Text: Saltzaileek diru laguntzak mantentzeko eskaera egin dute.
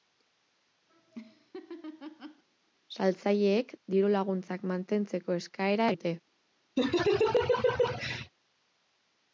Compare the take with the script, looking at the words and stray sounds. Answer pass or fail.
fail